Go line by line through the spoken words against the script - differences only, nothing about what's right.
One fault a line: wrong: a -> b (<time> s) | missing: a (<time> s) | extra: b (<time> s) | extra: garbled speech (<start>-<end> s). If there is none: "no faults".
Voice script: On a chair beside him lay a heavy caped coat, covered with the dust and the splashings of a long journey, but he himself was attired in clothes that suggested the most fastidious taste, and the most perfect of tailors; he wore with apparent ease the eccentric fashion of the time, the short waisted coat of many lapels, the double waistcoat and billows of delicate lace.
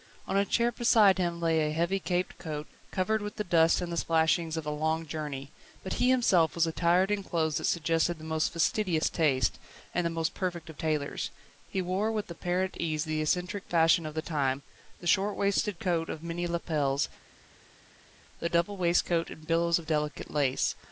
no faults